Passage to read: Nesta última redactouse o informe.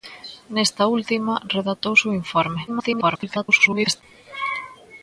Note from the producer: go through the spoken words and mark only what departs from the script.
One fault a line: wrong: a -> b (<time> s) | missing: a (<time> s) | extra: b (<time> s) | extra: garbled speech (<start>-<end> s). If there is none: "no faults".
extra: garbled speech (2.7-4.0 s)